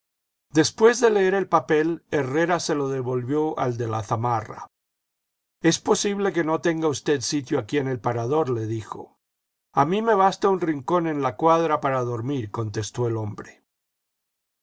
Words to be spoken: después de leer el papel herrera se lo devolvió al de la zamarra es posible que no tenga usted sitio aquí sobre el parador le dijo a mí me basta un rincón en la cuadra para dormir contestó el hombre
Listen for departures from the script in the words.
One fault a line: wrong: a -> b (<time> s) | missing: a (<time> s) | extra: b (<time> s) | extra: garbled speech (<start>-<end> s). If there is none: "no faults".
wrong: sobre -> en (7.8 s)